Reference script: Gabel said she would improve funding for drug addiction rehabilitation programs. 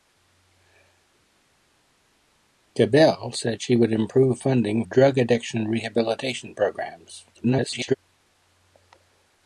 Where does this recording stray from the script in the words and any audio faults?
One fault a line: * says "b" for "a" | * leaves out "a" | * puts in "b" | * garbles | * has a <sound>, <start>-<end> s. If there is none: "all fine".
* leaves out "for"
* garbles